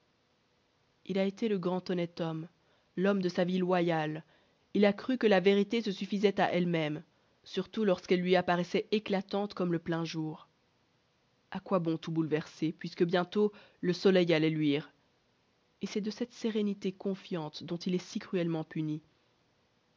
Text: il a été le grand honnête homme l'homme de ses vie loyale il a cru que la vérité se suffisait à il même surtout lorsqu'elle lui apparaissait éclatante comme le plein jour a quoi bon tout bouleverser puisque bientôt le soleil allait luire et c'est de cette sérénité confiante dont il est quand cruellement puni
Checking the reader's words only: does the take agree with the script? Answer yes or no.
no